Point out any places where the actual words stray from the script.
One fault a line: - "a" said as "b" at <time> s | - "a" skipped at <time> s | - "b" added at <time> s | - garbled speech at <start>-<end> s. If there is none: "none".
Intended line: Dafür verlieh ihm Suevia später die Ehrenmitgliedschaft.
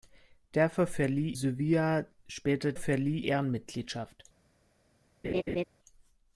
- "ihm" skipped at 1.4 s
- "die" said as "verlieh" at 2.8 s